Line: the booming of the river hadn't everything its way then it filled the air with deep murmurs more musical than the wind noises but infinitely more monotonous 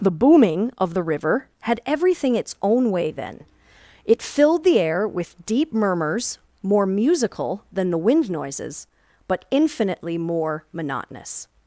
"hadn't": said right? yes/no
no